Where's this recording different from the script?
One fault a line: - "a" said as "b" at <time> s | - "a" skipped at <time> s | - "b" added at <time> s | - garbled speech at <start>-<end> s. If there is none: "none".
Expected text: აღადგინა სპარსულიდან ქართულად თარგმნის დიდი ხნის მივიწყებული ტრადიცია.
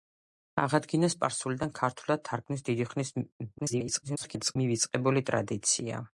- garbled speech at 3.6-4.6 s